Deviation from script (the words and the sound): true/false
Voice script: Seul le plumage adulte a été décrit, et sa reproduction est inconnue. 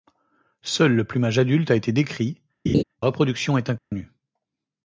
true